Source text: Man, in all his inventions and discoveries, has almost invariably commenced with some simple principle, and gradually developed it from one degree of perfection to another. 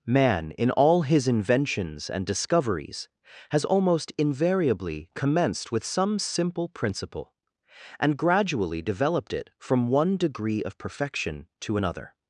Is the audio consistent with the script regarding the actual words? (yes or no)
yes